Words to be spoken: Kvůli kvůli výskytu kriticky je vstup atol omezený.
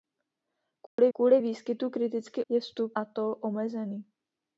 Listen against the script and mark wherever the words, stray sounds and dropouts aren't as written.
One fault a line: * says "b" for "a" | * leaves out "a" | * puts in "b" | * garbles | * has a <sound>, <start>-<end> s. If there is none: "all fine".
* has a dropout, 0.9-1.0 s